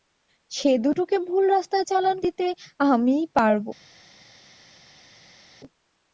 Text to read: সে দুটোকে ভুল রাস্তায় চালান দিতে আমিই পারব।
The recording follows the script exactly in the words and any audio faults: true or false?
true